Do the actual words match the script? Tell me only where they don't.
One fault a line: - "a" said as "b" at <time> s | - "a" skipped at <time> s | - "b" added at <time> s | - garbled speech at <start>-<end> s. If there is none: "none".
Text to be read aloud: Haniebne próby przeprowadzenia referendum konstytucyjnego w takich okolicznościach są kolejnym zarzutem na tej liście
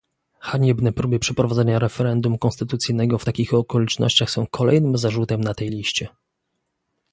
none